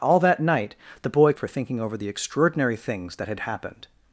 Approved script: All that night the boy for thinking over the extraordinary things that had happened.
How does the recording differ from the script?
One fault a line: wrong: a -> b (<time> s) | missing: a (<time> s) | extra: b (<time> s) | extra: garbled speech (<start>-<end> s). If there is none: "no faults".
no faults